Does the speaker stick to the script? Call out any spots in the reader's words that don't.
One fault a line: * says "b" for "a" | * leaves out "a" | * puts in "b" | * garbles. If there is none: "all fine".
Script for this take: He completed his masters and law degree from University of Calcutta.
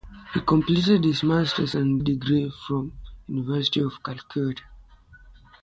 * leaves out "law"